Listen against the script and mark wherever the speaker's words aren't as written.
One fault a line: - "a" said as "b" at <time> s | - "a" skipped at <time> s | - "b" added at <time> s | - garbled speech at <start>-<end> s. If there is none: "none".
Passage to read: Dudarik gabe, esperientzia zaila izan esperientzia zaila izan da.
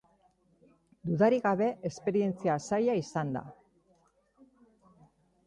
- "esperientzia zaila izan" skipped at 3.4 s